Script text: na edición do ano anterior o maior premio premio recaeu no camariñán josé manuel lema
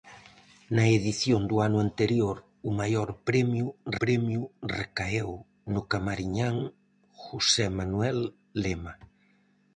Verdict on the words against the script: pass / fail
pass